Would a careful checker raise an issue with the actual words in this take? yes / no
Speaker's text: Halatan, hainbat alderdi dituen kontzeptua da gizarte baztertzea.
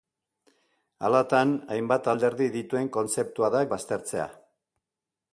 yes